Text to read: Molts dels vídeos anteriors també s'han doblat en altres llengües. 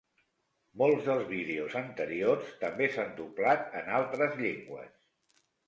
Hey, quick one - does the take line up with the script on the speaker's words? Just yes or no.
yes